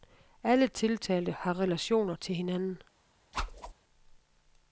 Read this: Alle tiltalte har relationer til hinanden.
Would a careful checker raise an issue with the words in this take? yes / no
no